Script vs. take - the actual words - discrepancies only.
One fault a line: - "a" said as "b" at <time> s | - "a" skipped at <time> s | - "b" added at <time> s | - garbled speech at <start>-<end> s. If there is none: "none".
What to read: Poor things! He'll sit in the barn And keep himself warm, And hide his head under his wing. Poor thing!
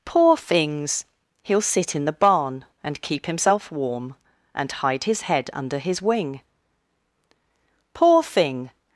none